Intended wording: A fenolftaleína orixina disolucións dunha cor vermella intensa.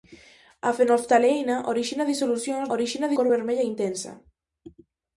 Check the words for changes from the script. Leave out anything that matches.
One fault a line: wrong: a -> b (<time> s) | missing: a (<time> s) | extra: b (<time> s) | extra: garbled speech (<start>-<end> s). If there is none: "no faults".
wrong: dunha -> orixina (2.7 s)